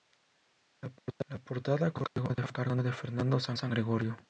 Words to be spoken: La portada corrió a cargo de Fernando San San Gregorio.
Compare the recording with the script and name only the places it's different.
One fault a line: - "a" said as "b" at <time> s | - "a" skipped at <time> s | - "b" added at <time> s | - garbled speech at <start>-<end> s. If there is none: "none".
none